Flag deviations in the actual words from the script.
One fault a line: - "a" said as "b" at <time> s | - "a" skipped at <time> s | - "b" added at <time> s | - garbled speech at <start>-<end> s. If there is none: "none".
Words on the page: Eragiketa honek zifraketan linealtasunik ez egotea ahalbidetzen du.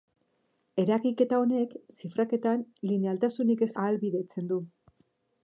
- "egotea" skipped at 3.7 s